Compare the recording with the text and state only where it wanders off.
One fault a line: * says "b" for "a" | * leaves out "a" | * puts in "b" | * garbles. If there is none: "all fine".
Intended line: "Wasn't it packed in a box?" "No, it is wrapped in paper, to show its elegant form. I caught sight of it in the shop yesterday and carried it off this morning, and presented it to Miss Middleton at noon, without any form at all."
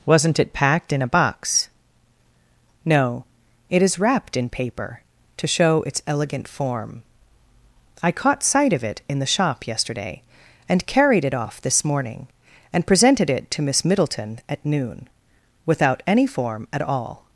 all fine